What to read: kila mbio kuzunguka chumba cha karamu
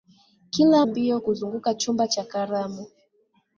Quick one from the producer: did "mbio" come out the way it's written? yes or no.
yes